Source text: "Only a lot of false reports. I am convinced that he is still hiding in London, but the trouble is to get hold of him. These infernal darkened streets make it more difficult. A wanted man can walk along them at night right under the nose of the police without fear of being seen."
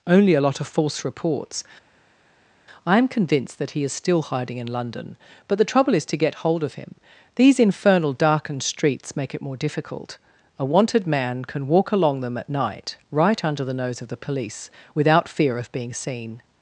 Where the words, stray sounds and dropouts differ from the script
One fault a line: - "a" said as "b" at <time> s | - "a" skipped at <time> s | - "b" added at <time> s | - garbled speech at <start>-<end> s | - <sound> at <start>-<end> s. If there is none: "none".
none